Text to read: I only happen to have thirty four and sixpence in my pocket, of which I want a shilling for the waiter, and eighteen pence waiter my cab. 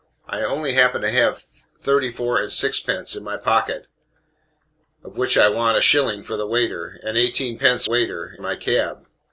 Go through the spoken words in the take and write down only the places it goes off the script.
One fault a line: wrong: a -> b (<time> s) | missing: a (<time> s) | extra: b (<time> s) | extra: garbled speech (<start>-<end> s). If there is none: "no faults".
no faults